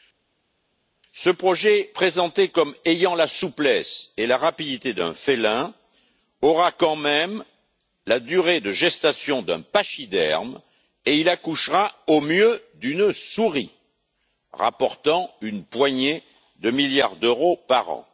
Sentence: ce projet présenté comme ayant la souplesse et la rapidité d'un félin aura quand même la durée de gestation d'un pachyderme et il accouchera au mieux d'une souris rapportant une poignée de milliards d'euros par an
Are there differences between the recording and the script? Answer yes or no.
no